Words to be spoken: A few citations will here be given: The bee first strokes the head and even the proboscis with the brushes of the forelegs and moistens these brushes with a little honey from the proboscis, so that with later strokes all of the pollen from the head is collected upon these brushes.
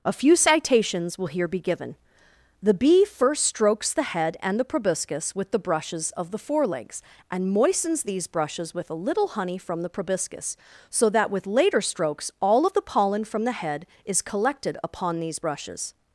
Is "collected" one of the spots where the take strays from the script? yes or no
no